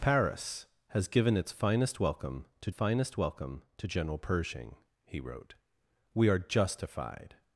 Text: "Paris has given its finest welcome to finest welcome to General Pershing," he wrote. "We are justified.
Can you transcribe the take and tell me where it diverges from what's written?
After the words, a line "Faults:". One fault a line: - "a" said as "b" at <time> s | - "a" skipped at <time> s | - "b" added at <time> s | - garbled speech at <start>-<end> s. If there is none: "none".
"Paris has given its finest welcome to finest welcome to General Pershing," he wrote. "We are justified.
Faults:
none